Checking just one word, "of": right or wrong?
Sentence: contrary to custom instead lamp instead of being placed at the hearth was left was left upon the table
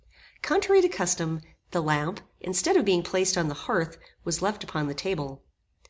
right